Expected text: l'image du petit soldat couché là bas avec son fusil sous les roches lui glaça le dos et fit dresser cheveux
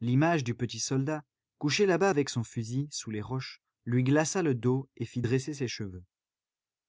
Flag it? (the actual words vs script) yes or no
yes